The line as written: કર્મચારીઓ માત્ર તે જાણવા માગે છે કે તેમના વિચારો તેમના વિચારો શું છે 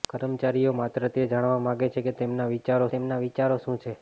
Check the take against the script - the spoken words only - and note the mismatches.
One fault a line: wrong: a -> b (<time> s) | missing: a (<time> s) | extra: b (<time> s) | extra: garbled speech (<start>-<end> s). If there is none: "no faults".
no faults